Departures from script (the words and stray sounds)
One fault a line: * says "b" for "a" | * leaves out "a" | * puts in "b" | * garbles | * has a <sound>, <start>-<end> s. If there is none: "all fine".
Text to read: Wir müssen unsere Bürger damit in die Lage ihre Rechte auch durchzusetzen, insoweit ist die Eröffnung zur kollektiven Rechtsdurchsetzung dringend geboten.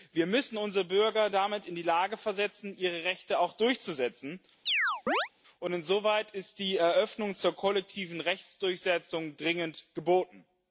* puts in "versetzen"
* has a chirp, 4.7-5.3 s
* puts in "und"